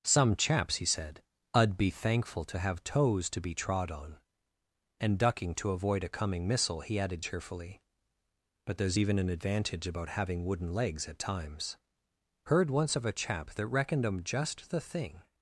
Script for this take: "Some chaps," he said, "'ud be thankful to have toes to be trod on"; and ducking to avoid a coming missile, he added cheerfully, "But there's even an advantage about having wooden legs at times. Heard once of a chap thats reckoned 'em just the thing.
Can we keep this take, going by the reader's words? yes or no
no